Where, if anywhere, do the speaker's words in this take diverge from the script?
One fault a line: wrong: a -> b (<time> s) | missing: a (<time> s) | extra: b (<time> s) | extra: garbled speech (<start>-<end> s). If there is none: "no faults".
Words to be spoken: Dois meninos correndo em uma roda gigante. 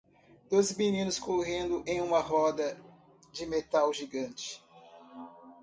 extra: de metal (3.3 s)